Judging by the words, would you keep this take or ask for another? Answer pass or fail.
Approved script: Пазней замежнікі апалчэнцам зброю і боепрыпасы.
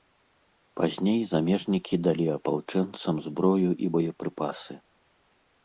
fail